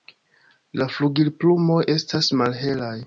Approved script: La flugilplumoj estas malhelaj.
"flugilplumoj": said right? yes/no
yes